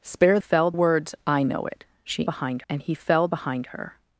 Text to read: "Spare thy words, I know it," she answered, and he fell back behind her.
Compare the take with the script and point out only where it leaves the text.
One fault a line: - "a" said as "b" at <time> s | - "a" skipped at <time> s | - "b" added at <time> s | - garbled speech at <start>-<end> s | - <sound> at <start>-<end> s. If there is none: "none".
- "thy" said as "fell" at 0.4 s
- "answered" said as "behind" at 2.2 s
- "back" skipped at 3.3 s